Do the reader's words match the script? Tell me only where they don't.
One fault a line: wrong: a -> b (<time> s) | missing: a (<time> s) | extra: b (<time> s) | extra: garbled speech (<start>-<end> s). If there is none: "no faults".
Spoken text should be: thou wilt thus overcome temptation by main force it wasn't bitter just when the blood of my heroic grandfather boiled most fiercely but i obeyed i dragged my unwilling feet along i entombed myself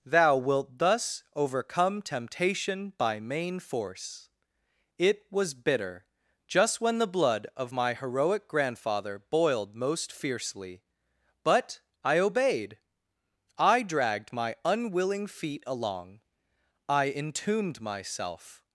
wrong: wasn't -> was (5.3 s)